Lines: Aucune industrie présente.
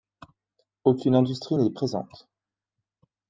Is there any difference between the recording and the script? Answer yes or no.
yes